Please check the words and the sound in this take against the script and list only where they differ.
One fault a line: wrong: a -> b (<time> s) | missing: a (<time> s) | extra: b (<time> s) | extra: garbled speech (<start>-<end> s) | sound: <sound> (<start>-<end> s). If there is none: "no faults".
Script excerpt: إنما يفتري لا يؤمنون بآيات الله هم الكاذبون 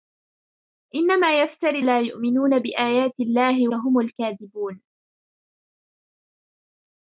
no faults